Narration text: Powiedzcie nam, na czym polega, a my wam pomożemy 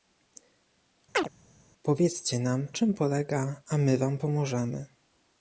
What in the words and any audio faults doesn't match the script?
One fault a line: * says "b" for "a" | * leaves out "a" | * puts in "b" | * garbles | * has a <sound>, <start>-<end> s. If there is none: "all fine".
* has a chirp, 1.1-1.3 s
* leaves out "na"